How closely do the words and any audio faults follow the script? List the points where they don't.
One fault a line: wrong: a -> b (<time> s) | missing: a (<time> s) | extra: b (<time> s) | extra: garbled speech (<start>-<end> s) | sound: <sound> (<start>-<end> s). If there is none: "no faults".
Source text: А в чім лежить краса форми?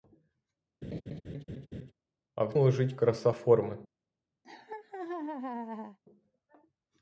sound: laugh (0.8-1.9 s)
missing: чім (2.6 s)
sound: laugh (4.4-6.0 s)